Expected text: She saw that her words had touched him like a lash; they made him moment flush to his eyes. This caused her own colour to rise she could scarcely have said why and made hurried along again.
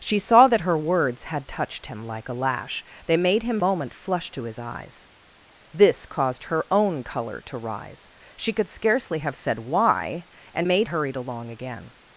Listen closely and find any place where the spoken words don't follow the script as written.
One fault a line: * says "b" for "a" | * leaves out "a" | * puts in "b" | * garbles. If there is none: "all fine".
all fine